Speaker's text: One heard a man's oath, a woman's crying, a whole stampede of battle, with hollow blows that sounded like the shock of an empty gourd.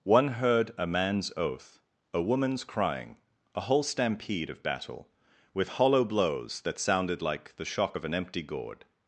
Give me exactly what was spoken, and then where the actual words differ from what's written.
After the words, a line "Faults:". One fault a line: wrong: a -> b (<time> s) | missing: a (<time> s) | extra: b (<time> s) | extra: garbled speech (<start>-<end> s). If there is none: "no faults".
One heard a man's oath, a woman's crying, a whole stampede of battle, with hollow blows that sounded like the shock of an empty gourd.
Faults:
no faults